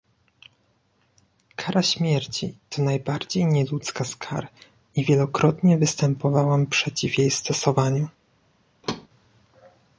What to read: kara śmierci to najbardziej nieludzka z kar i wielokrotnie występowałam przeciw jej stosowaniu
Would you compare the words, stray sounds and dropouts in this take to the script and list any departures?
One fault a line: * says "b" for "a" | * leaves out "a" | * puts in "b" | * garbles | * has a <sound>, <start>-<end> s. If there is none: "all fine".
* has a thud, 8.8-9.1 s